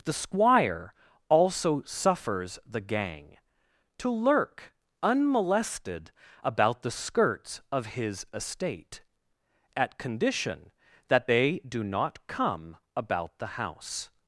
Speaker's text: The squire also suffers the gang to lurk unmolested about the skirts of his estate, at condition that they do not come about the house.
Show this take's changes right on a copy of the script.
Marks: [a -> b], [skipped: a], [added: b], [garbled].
The squire also suffers the gang to lurk unmolested about the skirts of his estate, at condition that they do not come about the house.